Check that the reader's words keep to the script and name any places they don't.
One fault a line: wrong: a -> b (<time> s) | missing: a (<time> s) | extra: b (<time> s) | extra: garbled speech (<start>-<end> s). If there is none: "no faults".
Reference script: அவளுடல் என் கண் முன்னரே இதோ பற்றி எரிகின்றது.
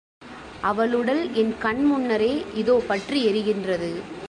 no faults